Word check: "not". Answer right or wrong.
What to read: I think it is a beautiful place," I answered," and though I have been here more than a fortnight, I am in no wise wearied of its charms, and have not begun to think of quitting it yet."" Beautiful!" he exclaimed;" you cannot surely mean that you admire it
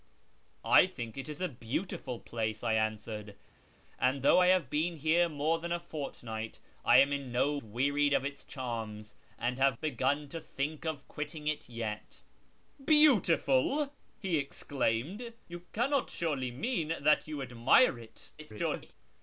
wrong